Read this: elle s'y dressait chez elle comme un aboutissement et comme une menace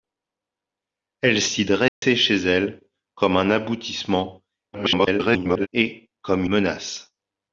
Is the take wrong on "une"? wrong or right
wrong